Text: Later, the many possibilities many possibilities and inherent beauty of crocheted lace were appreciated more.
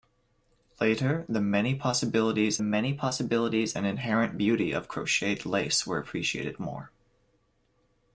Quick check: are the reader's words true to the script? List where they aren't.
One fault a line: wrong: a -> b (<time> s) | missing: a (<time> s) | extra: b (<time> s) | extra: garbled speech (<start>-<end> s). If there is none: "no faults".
no faults